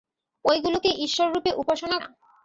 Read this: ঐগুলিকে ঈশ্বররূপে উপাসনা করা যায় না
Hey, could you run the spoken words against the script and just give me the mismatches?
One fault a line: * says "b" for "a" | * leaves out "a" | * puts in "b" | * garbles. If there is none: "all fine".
* leaves out "করা যায়"